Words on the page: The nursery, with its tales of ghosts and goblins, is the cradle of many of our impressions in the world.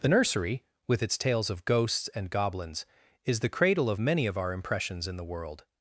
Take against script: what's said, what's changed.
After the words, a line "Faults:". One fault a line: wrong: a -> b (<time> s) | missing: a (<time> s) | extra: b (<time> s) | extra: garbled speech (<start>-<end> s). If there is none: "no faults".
The nursery, with its tales of ghosts and goblins, is the cradle of many of our impressions in the world.
Faults:
no faults